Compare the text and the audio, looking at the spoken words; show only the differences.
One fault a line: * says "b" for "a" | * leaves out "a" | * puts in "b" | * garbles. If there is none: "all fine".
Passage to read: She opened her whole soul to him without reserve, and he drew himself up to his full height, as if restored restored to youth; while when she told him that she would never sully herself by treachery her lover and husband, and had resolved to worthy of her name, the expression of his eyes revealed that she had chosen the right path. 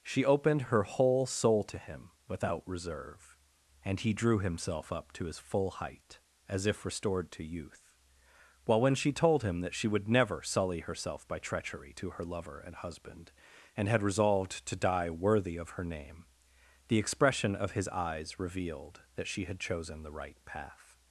* leaves out "restored"
* puts in "to"
* puts in "die"